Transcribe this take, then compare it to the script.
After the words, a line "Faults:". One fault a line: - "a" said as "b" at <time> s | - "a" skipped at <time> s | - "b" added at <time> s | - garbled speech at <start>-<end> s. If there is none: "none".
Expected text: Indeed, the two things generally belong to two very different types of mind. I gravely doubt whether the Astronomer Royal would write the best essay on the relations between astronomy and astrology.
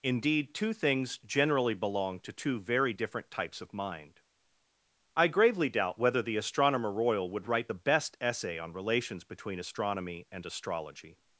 Indeed, two things generally belong to two very different types of mind. I gravely doubt whether the Astronomer Royal would write the best essay on relations between astronomy and astrology.
Faults:
- "the" skipped at 0.6 s
- "the" skipped at 8.7 s